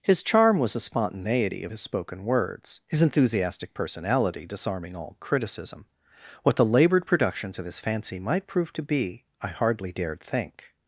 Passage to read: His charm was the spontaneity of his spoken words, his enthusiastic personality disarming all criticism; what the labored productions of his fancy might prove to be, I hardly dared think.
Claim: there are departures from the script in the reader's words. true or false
false